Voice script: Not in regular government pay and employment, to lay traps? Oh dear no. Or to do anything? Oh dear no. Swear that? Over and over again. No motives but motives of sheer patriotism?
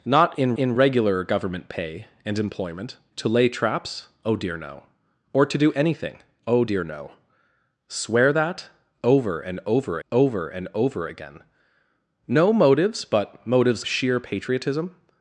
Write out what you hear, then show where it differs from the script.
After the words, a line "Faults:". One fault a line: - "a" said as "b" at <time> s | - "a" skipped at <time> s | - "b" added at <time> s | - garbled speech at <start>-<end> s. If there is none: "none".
Not in in regular government pay and employment, to lay traps? Oh dear no. Or to do anything? Oh dear no. Swear that? Over and over over and over again. No motives but motives sheer patriotism?
Faults:
- "in" added at 0.6 s
- "over and over" added at 10.1 s
- "of" skipped at 13.8 s